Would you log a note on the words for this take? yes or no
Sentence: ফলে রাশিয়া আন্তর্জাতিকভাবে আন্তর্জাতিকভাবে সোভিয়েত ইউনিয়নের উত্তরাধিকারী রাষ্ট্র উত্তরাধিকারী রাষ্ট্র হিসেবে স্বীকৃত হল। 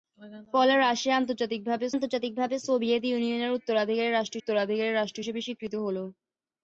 no